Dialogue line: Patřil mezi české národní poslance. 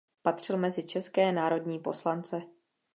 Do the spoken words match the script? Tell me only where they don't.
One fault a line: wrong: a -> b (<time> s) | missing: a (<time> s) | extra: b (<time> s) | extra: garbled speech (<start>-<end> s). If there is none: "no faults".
no faults